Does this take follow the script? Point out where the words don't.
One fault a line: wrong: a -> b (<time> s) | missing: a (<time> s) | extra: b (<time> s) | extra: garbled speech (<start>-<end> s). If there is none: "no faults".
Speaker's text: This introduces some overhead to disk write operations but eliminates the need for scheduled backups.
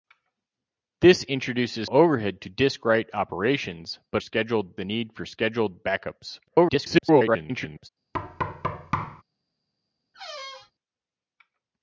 missing: some (1.9 s)
wrong: eliminates -> scheduled (4.2 s)
extra: garbled speech (6.5-7.9 s)